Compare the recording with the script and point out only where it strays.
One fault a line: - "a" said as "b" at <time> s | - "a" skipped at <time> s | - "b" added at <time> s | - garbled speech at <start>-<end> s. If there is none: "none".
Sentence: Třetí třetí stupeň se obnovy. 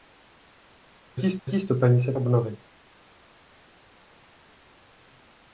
none